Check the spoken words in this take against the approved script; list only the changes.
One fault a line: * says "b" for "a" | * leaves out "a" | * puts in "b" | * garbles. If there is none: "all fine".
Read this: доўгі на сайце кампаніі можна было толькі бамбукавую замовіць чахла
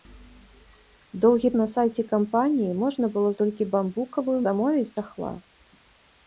all fine